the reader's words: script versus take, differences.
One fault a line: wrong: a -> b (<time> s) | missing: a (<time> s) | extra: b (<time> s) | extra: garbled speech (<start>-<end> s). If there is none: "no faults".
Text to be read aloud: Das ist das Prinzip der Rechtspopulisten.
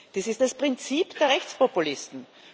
no faults